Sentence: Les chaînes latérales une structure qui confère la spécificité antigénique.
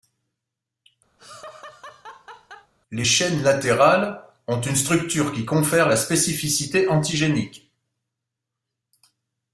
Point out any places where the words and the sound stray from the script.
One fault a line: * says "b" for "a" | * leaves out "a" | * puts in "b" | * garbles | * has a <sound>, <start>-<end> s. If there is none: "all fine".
* has a laugh, 1.2-2.7 s
* puts in "ont"